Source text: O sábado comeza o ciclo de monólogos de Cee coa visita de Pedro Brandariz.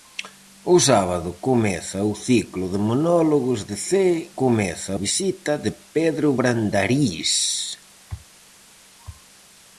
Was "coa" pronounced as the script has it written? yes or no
no